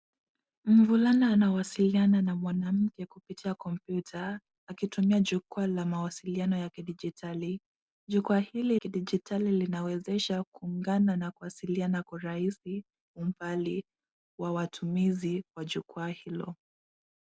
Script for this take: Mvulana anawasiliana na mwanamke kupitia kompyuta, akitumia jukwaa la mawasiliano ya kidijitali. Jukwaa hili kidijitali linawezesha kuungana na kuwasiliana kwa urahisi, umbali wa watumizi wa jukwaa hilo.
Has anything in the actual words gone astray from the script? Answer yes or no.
no